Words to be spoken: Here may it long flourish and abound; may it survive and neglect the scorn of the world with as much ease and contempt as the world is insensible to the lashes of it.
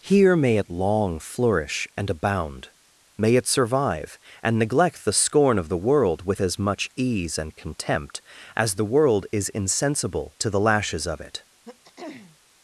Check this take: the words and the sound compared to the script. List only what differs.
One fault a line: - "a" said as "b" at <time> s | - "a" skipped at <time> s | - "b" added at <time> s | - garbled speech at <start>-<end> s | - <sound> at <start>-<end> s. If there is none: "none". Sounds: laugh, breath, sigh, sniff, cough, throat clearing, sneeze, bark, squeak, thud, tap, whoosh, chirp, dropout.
- throat clearing at 11.6-12.4 s